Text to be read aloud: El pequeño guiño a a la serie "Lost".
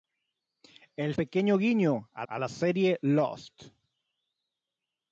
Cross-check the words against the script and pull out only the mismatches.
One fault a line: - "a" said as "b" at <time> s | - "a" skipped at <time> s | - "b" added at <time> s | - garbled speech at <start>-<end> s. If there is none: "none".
none